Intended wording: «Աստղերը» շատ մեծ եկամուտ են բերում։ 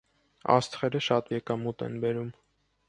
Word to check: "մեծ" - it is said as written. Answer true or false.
false